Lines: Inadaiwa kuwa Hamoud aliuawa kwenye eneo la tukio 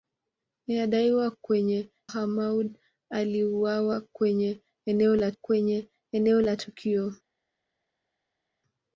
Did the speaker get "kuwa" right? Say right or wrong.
wrong